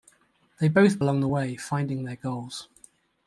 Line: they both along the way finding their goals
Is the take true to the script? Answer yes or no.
yes